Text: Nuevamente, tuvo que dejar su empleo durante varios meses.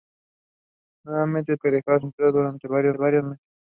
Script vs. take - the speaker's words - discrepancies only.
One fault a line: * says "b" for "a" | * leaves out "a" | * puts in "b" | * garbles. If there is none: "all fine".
* leaves out "tuvo"
* leaves out "su"
* puts in "varios"